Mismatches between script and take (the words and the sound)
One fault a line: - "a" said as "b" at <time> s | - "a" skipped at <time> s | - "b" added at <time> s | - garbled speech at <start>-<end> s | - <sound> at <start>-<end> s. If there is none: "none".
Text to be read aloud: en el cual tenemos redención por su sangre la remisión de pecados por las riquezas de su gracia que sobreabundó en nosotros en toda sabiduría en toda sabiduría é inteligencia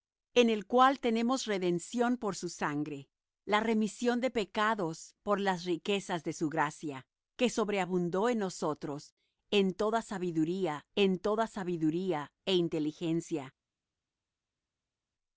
none